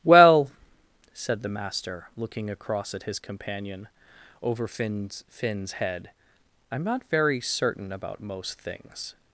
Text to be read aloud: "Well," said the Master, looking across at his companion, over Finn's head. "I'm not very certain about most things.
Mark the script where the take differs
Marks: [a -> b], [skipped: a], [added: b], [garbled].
"Well," said the Master, looking across at his companion, over Finn's [added: Finn's] head. "I'm not very certain about most things.